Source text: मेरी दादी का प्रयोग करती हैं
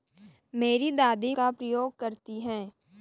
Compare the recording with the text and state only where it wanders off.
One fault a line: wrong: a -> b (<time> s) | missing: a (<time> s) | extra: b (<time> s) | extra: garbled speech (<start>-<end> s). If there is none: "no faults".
no faults